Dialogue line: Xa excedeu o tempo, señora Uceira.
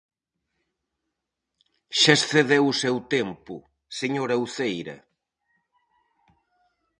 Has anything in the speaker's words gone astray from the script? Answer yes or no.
yes